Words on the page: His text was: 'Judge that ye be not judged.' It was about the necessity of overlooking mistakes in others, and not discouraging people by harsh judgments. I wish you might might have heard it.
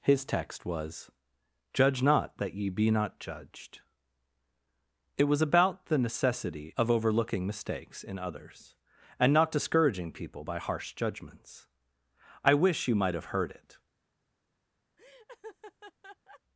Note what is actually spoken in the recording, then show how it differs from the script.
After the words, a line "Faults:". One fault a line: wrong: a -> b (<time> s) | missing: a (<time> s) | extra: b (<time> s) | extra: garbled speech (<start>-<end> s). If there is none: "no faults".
His text was: 'Judge not that ye be not judged.' It was about the necessity of overlooking mistakes in others, and not discouraging people by harsh judgments. I wish you might have heard it.
Faults:
extra: not (2.0 s)
missing: might (13.1 s)